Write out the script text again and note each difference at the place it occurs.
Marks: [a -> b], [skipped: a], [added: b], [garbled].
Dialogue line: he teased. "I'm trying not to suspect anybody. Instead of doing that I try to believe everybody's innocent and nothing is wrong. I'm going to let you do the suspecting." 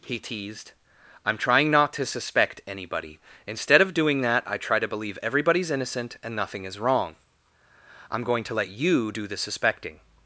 he teased. "I'm trying not to suspect anybody. Instead of doing that I try to believe everybody's innocent and nothing is wrong. I'm going to let you do the suspecting."